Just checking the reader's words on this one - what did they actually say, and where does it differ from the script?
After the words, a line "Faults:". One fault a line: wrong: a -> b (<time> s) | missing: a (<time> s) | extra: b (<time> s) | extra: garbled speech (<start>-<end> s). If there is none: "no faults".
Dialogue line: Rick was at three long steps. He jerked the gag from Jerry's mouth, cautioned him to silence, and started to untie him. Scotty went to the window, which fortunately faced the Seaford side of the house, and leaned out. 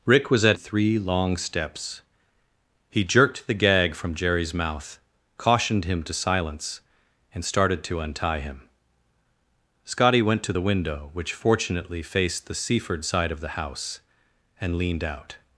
Rick was at three long steps. He jerked the gag from Jerry's mouth, cautioned him to silence, and started to untie him. Scotty went to the window, which fortunately faced the Seaford side of the house, and leaned out.
Faults:
no faults